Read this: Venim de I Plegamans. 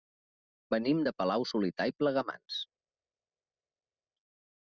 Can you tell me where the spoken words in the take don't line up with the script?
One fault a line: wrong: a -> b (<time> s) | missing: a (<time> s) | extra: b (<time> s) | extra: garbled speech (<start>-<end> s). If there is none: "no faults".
extra: Palau solità (1.2 s)